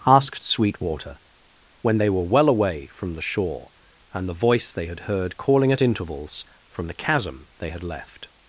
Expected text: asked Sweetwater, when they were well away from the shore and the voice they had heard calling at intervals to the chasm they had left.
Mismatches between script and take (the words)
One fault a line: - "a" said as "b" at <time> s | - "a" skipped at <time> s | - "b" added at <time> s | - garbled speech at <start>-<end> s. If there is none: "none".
- "to" said as "from" at 6.7 s